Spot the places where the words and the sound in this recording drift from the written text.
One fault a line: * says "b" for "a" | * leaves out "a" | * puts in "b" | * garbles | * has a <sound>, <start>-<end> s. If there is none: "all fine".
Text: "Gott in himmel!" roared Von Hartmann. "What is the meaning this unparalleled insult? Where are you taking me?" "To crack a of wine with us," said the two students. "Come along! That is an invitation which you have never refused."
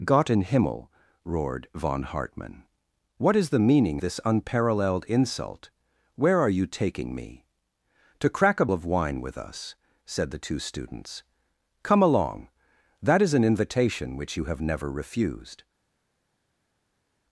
all fine